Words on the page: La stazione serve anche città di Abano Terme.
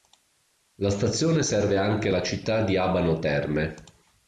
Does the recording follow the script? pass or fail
fail